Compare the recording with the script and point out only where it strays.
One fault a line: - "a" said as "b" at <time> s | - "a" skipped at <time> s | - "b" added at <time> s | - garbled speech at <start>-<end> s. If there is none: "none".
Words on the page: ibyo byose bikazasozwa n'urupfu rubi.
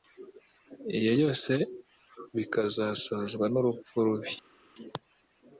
none